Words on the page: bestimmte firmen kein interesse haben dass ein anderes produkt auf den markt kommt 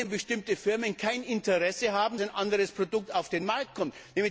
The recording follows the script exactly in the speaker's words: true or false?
false